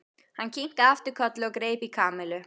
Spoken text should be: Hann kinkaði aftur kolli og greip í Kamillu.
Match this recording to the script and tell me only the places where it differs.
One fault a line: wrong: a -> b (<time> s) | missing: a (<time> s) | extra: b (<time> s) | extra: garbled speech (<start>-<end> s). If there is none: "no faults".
no faults